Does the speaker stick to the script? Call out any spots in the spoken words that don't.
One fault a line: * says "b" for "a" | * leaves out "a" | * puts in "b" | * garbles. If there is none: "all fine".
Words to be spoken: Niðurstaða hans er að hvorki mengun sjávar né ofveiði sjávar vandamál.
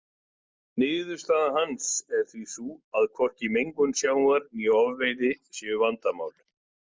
* puts in "því sú"
* says "séu" for "sjávar"